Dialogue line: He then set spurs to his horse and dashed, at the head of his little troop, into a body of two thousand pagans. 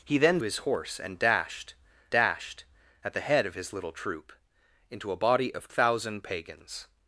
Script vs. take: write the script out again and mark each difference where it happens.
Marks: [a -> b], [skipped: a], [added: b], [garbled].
He then [skipped: set spurs to] his horse and dashed, [added: dashed] at the head of his little troop, into a body of [skipped: two] thousand pagans.